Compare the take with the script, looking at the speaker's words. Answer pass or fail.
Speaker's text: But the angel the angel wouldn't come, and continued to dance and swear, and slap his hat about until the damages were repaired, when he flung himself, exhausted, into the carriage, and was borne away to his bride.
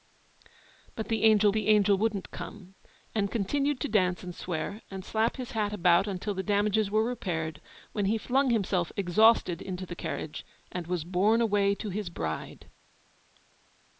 pass